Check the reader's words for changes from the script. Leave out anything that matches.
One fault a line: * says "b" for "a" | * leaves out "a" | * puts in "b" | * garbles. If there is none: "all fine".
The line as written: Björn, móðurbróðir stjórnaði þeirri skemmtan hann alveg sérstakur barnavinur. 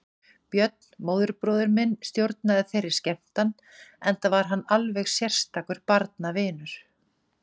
* puts in "minn"
* puts in "enda var"